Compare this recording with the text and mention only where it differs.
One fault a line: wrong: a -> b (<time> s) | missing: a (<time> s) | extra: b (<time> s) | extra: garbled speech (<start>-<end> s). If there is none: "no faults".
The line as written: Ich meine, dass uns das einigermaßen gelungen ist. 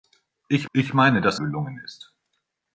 extra: ich (0.7 s)
missing: uns das einigermaßen (1.4 s)